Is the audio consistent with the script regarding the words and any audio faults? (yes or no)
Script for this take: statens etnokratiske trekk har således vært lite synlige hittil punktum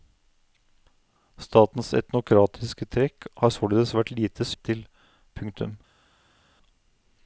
no